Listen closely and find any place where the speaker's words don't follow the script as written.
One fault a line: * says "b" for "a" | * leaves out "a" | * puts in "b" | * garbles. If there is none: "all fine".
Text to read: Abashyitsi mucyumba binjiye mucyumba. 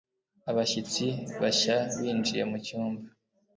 * says "bashya" for "mucyumba"